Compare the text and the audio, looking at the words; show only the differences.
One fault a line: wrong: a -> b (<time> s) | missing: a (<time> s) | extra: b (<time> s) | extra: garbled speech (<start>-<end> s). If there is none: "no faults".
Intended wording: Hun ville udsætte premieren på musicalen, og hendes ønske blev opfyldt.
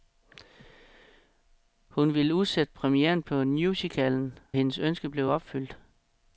missing: og (4.4 s)